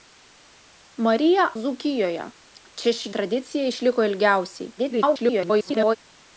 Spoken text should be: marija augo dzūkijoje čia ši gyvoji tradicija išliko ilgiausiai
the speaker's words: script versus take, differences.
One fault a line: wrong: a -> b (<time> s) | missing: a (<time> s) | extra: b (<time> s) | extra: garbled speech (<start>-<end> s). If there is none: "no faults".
missing: augo (1.4 s)
missing: gyvoji (3.1 s)
extra: garbled speech (4.8-6.0 s)